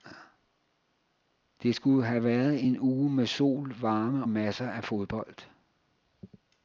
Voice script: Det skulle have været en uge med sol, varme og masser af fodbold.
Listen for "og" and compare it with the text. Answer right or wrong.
wrong